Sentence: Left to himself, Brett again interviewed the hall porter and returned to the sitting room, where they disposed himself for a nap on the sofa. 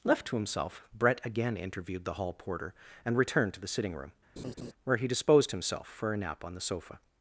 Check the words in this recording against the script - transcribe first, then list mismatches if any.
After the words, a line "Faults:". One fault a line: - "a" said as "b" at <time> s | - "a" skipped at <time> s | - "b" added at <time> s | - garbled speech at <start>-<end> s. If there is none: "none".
Left to himself, Brett again interviewed the hall porter and returned to the sitting room, where he disposed himself for a nap on the sofa.
Faults:
- "they" said as "he" at 5.0 s